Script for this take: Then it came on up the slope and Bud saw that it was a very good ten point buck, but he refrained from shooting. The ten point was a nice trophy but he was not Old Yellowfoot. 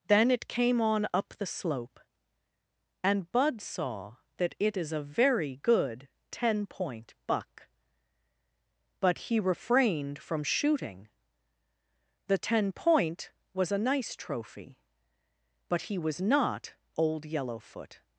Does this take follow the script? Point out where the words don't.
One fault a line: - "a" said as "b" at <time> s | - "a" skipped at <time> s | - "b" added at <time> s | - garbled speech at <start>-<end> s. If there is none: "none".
- "was" said as "is" at 4.8 s